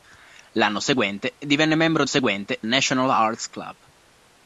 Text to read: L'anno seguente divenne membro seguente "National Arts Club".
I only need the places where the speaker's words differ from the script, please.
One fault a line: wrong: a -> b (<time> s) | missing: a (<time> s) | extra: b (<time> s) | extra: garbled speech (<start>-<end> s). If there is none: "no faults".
no faults